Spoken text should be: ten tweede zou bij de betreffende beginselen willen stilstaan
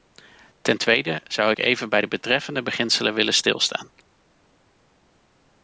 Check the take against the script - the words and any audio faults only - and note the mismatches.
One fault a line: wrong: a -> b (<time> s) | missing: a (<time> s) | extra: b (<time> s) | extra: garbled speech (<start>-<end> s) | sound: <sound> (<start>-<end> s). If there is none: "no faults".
extra: ik even (1.5 s)